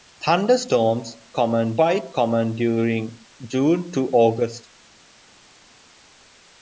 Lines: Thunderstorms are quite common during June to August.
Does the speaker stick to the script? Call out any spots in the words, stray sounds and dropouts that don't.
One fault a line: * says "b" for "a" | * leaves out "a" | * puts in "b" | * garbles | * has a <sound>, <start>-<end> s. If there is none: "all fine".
* says "common" for "are"